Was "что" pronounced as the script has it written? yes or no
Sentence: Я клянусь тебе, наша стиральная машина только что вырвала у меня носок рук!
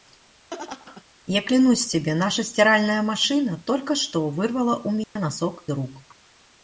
yes